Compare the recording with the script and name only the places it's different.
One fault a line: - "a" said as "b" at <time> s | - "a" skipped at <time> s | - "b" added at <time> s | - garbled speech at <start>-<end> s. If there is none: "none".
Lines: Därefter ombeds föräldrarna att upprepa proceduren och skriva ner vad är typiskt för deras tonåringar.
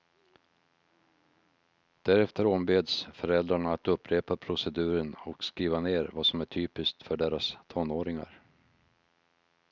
- "som" added at 6.2 s